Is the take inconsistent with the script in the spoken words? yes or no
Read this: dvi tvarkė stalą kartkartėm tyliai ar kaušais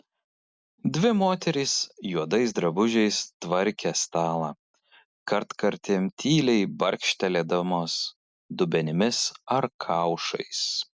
yes